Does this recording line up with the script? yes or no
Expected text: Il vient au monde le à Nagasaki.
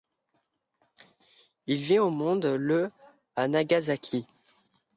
yes